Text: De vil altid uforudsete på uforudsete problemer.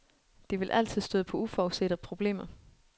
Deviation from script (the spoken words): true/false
true